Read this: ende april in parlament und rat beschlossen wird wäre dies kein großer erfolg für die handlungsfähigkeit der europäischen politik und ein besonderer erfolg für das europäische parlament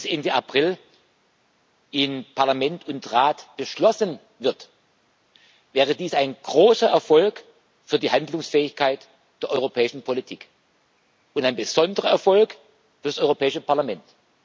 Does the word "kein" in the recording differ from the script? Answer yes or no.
yes